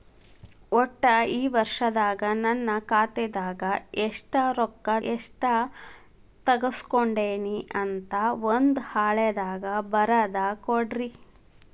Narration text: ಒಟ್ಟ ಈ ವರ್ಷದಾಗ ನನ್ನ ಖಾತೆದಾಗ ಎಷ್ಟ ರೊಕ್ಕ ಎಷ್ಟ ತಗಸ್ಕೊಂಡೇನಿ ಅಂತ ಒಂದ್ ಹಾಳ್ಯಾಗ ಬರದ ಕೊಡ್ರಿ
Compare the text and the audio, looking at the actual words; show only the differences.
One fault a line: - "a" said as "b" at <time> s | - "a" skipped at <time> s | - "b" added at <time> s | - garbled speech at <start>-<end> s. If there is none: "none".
none